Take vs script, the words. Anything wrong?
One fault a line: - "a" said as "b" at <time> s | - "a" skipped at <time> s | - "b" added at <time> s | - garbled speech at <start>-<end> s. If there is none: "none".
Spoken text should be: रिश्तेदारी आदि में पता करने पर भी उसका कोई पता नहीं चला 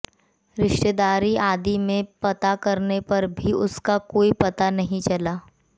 none